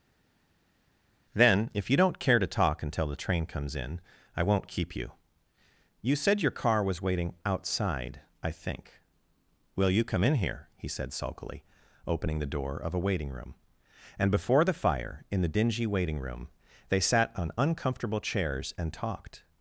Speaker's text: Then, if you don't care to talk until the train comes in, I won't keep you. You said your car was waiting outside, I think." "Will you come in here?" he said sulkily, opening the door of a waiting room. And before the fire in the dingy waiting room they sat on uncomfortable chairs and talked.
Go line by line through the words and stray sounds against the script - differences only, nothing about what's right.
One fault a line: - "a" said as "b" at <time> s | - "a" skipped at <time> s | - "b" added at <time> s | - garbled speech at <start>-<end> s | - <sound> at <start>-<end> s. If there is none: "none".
none